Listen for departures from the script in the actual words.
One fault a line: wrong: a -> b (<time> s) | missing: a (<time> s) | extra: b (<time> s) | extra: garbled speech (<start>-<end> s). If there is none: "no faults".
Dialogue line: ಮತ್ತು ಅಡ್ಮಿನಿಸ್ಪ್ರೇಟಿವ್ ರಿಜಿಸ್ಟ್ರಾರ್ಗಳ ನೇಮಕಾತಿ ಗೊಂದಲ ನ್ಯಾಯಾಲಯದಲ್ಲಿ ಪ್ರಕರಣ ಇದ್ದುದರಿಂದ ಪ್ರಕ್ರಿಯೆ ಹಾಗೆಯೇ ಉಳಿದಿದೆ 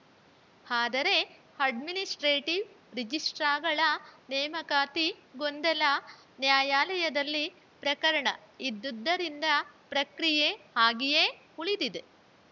wrong: ಮತ್ತು -> ಆದರೆ (0.7 s)